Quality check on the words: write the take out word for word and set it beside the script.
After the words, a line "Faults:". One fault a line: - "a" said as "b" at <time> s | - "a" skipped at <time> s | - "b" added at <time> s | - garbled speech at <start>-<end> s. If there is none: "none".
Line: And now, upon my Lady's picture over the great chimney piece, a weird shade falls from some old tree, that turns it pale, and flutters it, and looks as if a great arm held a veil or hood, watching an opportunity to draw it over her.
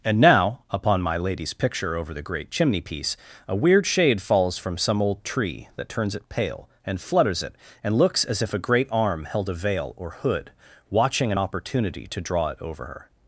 And now, upon my Lady's picture over the great chimney piece, a weird shade falls from some old tree, that turns it pale, and flutters it, and looks as if a great arm held a veil or hood, watching an opportunity to draw it over her.
Faults:
none